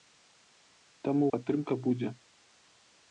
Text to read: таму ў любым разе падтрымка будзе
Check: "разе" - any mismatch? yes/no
yes